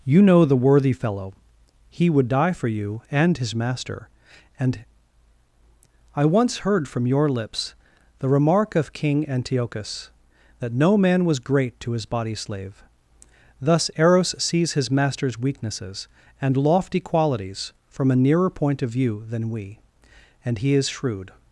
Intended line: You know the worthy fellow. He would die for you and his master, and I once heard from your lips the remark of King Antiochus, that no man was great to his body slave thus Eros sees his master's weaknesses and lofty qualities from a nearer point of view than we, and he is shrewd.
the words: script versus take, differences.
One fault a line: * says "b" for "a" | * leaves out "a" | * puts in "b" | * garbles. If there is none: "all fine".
all fine